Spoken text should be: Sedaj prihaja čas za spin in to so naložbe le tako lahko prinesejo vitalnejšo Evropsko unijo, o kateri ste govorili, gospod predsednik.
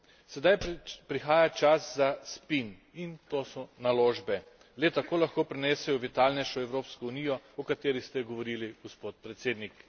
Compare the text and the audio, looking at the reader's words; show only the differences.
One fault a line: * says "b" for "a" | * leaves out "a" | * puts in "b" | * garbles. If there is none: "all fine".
all fine